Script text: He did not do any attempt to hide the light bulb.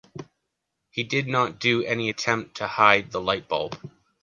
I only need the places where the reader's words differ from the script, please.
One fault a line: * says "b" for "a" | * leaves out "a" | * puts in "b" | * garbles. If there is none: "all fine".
all fine